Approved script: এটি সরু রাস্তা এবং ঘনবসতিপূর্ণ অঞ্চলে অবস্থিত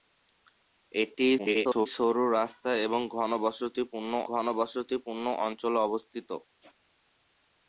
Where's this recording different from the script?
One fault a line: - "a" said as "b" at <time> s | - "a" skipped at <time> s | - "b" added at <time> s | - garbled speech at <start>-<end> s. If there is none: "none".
- garbled speech at 1.4-1.9 s
- "ঘনবসতিপূর্ণ" added at 4.3 s